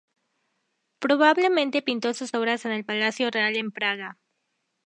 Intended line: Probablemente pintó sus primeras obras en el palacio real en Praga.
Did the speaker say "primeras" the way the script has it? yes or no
no